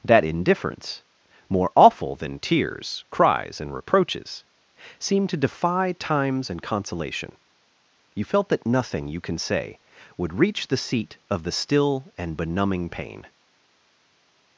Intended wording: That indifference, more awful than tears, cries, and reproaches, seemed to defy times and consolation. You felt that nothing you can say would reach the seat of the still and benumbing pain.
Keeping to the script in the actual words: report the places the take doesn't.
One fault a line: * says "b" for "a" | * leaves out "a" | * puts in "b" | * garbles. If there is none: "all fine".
all fine